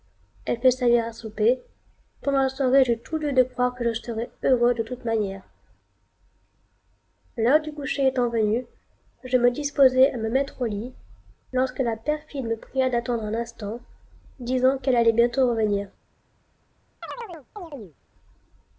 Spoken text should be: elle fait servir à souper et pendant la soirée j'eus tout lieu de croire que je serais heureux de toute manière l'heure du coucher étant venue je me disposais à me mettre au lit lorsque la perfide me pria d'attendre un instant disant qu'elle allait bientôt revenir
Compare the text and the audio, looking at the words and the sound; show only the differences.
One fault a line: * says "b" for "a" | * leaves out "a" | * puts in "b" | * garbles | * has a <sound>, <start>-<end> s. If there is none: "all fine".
* leaves out "et"
* has a chirp, 17.0-18.0 s